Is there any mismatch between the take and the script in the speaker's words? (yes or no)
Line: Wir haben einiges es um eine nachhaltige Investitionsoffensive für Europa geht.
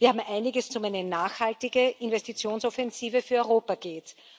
no